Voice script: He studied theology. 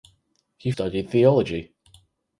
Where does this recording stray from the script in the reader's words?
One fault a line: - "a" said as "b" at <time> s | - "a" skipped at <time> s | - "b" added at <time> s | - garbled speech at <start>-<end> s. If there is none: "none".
none